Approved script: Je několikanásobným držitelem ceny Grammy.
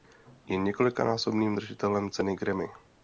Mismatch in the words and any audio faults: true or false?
false